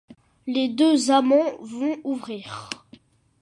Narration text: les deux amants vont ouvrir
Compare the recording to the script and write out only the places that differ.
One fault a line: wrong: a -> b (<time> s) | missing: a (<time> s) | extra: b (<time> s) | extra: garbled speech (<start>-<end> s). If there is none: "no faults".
no faults